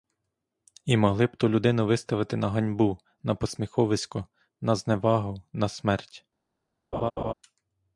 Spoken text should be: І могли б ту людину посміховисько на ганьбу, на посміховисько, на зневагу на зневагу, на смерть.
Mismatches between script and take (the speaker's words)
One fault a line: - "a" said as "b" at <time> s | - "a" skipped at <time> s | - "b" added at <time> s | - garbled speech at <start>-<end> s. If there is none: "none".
- "посміховисько" said as "виставити" at 1.9 s
- "зневагу на" skipped at 5.7 s